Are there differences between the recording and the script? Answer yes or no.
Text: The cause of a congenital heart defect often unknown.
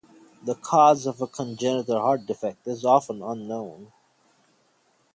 yes